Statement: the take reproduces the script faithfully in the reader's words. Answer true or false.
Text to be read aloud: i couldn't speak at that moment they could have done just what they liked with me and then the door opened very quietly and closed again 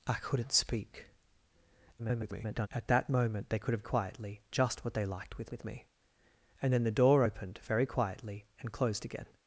false